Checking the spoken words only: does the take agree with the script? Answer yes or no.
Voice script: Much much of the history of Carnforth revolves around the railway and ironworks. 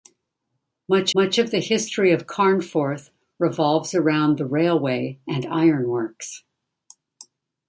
yes